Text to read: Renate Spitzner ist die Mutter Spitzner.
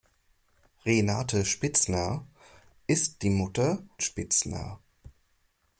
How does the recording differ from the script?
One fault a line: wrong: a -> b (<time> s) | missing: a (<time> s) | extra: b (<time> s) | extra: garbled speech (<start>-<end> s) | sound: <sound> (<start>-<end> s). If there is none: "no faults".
no faults